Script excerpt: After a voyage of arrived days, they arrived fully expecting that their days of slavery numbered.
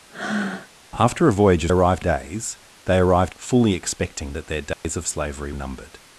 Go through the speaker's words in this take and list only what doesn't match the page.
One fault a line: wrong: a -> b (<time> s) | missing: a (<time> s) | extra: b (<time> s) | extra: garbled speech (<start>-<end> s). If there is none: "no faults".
no faults